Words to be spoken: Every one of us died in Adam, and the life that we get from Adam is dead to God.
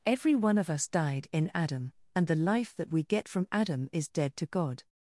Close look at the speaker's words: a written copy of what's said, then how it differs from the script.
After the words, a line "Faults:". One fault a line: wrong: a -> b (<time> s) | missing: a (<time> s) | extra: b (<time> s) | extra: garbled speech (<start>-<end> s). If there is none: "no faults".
Every one of us died in Adam, and the life that we get from Adam is dead to God.
Faults:
no faults